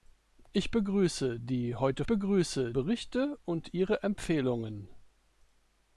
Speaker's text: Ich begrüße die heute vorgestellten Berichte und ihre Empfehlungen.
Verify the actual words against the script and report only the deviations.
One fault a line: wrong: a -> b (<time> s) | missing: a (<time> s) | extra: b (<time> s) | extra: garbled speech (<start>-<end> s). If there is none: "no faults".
wrong: vorgestellten -> begrüße (2.1 s)